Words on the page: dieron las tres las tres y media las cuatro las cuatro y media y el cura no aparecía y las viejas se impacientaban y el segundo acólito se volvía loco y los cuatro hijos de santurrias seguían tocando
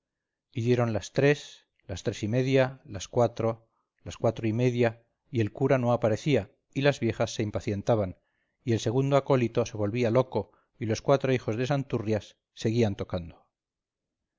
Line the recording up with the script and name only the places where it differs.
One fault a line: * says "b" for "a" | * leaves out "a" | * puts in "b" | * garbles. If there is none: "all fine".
all fine